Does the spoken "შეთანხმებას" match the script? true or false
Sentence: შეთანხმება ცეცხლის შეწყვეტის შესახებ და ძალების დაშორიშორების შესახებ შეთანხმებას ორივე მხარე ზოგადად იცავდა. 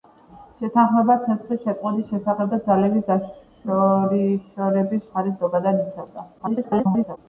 false